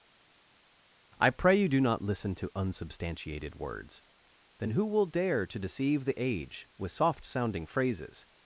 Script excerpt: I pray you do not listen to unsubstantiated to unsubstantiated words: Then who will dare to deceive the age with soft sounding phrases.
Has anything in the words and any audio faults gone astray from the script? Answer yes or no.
yes